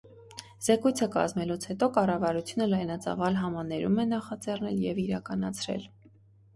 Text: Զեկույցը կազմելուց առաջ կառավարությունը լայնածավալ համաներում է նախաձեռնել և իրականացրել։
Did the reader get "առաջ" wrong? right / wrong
wrong